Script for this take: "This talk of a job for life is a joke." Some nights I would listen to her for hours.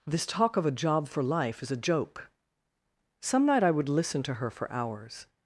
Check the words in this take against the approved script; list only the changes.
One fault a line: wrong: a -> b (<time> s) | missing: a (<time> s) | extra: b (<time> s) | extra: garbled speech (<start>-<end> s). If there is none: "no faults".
wrong: nights -> night (3.5 s)